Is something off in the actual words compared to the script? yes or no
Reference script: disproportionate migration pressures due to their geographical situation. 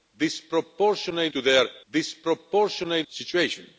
yes